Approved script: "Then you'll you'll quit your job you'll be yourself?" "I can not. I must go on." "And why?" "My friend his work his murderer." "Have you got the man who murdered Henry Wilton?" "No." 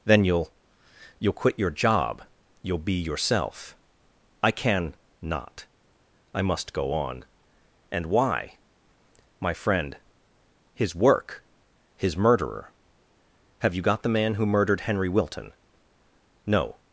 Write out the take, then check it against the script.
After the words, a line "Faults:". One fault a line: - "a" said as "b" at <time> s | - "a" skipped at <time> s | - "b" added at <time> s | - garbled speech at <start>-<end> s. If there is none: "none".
"Then you'll you'll quit your job you'll be yourself?" "I can not. I must go on." "And why?" "My friend his work his murderer." "Have you got the man who murdered Henry Wilton?" "No."
Faults:
none